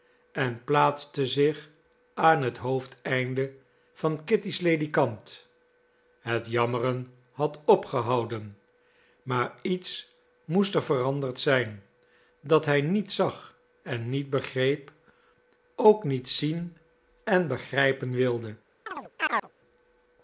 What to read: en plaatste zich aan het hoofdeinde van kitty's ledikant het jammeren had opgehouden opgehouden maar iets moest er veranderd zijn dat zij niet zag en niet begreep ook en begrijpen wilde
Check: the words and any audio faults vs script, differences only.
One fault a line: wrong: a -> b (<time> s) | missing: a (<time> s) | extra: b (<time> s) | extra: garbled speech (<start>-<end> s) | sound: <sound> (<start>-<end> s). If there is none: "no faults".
missing: opgehouden (8.6 s)
wrong: zij -> hij (12.6 s)
extra: niet zien (16.0 s)
sound: chirp (18.9-19.5 s)